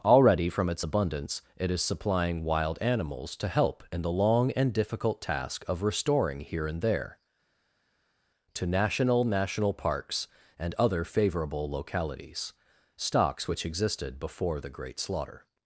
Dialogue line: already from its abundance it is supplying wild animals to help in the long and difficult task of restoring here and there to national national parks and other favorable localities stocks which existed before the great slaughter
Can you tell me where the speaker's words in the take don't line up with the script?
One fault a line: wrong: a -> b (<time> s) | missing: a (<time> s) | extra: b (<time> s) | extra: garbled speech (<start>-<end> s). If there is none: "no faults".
no faults